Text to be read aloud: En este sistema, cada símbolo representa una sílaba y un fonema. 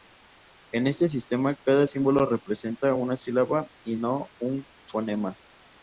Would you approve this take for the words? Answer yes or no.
no